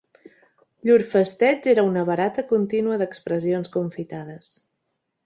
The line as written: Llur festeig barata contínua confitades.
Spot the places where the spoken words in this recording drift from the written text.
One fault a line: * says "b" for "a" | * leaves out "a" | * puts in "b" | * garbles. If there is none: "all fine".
* puts in "era una"
* puts in "d'expressions"